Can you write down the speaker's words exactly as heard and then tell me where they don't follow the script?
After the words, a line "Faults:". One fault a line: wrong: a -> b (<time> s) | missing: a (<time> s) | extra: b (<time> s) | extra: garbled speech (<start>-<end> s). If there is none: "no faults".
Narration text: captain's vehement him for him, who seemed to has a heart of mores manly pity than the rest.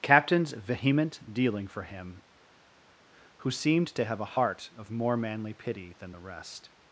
captain's vehement dealing for him, who seemed to have a heart of more manly pity than the rest.
Faults:
wrong: him -> dealing (1.3 s)
wrong: has -> have (4.0 s)
wrong: mores -> more (4.9 s)